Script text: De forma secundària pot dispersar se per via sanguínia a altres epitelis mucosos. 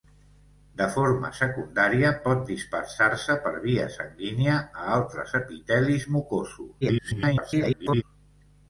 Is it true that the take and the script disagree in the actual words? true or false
true